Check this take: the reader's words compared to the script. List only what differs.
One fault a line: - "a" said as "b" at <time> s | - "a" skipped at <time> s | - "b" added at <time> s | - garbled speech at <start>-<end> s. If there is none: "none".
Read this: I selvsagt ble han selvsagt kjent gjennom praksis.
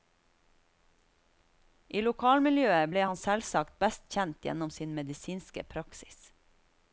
- "selvsagt" said as "lokalmiljøet" at 2.0 s
- "best" added at 3.8 s
- "sin medisinske" added at 4.8 s